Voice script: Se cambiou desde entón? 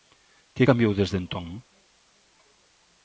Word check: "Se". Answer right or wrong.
wrong